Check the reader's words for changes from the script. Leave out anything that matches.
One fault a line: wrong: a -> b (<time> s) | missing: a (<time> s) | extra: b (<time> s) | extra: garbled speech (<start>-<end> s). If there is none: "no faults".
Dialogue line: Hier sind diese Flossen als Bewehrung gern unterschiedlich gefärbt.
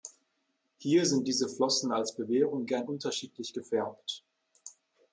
no faults